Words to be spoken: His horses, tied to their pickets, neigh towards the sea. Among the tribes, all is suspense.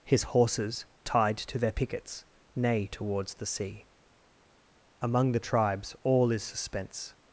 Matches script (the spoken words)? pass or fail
pass